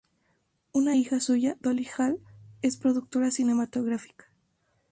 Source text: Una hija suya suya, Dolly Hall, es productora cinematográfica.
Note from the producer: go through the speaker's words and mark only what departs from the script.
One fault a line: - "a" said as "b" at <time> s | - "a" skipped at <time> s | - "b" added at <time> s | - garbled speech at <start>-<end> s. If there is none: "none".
- "suya" skipped at 1.6 s